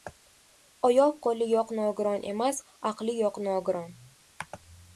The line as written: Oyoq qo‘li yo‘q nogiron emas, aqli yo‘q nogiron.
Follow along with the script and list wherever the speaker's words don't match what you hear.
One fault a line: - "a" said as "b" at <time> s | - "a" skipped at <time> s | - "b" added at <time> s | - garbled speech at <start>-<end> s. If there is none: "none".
none